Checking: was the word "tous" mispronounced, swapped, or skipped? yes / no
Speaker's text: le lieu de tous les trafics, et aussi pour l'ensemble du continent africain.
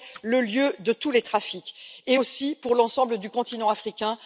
no